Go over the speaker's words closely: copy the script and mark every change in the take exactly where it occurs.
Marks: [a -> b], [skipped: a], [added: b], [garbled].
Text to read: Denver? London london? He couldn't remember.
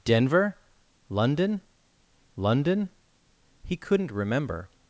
Denver? London london? He couldn't remember.